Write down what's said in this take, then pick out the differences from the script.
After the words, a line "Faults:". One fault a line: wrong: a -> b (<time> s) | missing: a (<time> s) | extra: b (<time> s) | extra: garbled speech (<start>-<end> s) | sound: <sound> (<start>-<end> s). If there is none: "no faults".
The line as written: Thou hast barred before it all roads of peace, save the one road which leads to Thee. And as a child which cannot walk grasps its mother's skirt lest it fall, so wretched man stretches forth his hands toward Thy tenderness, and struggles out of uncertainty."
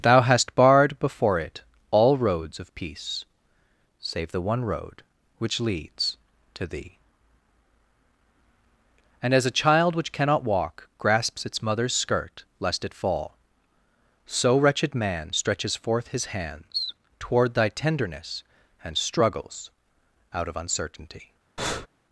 Thou hast barred before it all roads of peace, save the one road which leads to Thee. And as a child which cannot walk grasps its mother's skirt lest it fall, so wretched man stretches forth his hands toward Thy tenderness, and struggles out of uncertainty."
Faults:
sound: breath (21.6-21.9 s)